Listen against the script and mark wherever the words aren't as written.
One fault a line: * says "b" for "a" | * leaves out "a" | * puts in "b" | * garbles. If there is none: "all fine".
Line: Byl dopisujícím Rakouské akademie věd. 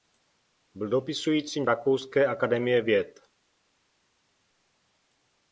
all fine